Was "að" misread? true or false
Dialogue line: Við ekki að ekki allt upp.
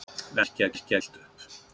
false